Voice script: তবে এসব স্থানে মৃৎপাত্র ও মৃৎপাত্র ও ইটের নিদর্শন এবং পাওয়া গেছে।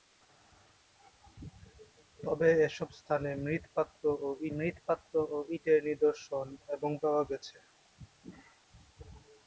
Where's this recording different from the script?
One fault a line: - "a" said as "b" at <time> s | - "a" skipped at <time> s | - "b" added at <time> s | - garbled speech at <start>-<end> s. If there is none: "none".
none